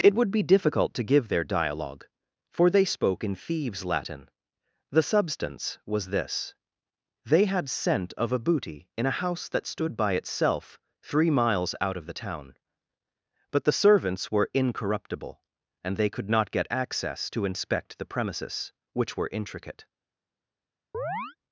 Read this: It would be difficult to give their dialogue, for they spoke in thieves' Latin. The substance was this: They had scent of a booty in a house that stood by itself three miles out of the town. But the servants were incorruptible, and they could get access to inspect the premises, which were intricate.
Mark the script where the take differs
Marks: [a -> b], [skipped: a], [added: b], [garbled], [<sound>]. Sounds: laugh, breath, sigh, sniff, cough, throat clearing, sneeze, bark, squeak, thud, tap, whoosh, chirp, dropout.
It would be difficult to give their dialogue, for they spoke in thieves' Latin. The substance was this: They had scent of a booty in a house that stood by itself three miles out of the town. But the servants were incorruptible, and they could [added: not] get access to inspect the premises, which were intricate. [chirp]